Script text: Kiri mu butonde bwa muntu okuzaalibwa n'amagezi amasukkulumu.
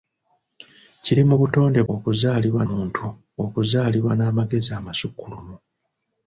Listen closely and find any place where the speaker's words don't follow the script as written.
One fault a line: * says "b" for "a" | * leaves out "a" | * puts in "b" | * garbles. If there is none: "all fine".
* says "okuzaalibwa" for "bwa"